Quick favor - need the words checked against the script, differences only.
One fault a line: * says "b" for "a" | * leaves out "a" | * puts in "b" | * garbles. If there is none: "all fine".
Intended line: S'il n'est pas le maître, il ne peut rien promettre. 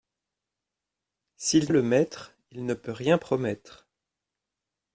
* leaves out "n'est pas"